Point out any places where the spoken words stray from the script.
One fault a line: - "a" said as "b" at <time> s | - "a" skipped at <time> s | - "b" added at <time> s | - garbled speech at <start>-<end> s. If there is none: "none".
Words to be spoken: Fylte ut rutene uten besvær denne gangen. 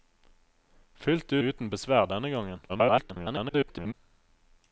- "ut rutene" skipped at 1.4 s
- garbled speech at 2.7-3.9 s